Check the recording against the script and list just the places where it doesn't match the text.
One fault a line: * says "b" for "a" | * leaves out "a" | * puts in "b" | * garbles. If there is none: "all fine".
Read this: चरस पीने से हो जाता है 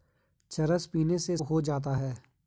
all fine